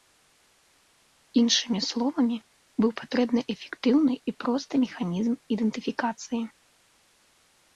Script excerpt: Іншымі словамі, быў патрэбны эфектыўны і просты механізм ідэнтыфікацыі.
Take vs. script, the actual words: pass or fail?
pass